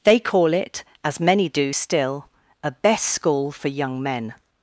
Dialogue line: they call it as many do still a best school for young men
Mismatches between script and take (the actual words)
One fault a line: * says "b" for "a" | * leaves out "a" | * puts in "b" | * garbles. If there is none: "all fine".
all fine